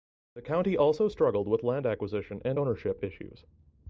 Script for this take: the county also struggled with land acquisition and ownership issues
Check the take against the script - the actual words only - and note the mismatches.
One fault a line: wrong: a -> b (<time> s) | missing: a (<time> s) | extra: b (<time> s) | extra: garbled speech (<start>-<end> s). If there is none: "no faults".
no faults